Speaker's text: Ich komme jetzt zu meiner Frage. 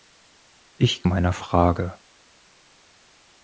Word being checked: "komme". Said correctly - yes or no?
no